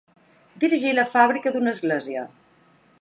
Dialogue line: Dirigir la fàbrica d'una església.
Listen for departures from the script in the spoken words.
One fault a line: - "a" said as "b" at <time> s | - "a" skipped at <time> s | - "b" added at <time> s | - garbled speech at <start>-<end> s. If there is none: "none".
none